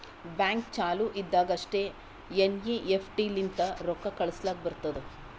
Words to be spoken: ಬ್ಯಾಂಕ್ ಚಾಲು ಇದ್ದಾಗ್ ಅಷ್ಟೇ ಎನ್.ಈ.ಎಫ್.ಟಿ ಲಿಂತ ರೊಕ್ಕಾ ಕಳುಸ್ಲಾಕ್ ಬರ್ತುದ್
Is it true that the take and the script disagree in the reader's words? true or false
false